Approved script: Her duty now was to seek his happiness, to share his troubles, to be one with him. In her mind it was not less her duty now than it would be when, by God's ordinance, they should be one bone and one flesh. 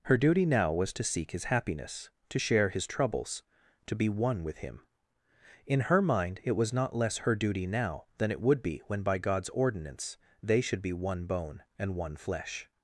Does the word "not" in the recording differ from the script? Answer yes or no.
no